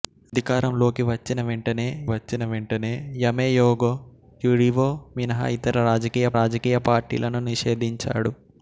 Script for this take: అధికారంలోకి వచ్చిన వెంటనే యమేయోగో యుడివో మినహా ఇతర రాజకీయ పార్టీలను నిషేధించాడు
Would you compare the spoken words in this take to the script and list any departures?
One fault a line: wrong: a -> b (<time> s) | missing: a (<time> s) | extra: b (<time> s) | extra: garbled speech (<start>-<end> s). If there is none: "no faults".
extra: వచ్చిన వెంటనే (2.1 s)
extra: రాజకీయ (6.3 s)